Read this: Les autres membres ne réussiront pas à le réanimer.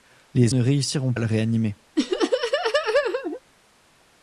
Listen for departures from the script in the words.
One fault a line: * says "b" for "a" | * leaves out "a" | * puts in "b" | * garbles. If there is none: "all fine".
* leaves out "autres membres"
* leaves out "pas"